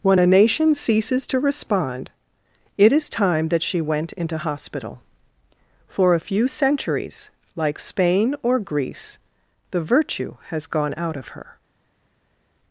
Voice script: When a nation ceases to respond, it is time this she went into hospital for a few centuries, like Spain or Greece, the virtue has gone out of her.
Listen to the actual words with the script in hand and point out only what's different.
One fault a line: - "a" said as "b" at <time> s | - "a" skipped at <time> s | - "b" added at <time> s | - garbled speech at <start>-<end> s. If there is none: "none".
- "this" said as "that" at 3.5 s